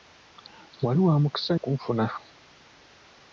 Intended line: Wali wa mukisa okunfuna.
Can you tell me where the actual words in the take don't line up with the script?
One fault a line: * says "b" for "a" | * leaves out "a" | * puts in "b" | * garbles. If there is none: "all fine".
all fine